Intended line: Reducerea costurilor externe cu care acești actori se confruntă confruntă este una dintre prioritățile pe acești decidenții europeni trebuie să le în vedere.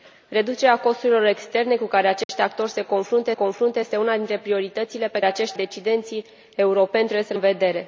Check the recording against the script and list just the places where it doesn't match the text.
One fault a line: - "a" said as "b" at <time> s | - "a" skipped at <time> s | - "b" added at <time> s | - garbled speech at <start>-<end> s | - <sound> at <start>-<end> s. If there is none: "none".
- dropout at 2.2-2.3 s